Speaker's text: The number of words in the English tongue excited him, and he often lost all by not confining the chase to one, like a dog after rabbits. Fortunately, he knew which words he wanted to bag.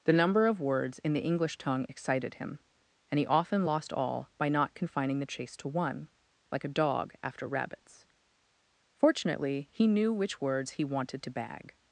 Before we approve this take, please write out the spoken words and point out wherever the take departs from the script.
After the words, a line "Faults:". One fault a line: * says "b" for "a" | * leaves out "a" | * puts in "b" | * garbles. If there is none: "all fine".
The number of words in the English tongue excited him, and he often lost all by not confining the chase to one, like a dog after rabbits. Fortunately, he knew which words he wanted to bag.
Faults:
all fine